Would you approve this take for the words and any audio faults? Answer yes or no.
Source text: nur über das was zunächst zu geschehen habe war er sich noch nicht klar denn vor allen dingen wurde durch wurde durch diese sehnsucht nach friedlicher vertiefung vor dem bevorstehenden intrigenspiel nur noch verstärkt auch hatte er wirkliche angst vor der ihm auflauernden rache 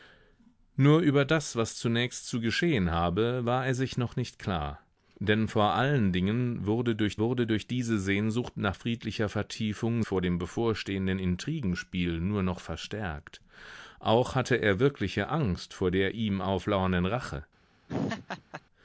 no